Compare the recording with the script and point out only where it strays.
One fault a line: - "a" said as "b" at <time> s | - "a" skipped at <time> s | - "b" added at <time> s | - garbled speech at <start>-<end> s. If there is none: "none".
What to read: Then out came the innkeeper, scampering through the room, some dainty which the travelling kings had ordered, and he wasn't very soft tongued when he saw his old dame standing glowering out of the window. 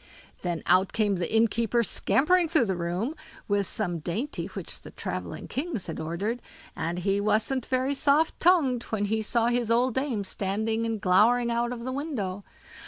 - "with" added at 3.5 s
- "and" added at 10.9 s